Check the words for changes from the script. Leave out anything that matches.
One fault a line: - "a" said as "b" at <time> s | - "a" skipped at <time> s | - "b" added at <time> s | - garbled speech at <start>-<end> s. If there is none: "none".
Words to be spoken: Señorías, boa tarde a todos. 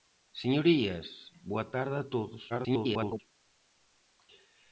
- garbled speech at 2.5-3.2 s